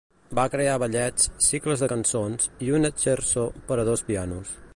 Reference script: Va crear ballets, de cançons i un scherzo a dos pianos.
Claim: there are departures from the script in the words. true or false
true